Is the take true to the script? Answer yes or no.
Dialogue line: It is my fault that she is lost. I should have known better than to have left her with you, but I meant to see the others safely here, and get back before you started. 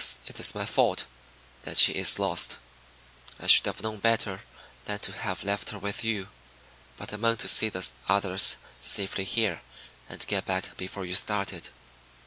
yes